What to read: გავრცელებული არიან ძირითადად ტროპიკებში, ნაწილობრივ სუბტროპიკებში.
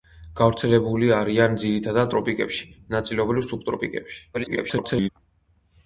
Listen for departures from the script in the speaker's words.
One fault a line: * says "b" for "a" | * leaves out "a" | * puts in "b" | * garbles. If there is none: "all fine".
* garbles